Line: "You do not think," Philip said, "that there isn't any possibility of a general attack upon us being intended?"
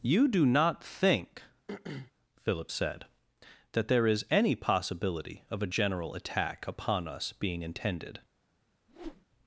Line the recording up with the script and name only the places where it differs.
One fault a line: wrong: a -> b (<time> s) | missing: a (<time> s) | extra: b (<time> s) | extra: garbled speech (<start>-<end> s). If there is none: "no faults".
wrong: isn't -> is (4.1 s)